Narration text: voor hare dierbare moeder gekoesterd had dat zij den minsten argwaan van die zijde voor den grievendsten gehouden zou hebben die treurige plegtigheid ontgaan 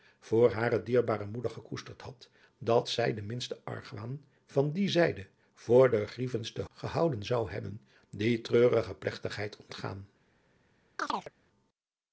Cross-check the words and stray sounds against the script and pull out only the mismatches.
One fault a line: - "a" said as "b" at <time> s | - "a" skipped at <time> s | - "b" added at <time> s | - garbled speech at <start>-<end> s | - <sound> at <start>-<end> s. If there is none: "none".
- chirp at 11.0-11.3 s